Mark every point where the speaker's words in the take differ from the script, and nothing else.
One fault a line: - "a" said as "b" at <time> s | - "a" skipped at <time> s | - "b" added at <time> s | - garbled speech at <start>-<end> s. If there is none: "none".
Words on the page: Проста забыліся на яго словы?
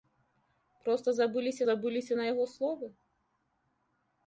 - "забыліся" added at 1.7 s